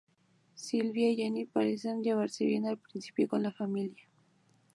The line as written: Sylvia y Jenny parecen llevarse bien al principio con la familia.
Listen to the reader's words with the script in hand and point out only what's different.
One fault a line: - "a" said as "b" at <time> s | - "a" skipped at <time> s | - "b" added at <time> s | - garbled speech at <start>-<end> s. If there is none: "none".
none